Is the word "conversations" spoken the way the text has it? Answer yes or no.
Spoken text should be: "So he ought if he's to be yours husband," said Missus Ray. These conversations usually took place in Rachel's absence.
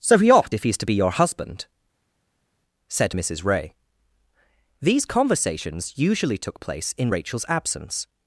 yes